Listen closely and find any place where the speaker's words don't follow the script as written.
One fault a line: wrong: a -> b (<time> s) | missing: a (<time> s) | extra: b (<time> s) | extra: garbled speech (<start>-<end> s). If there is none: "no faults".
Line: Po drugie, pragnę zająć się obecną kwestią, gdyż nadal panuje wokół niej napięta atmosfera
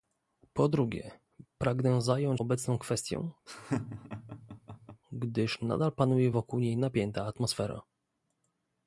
missing: się (2.4 s)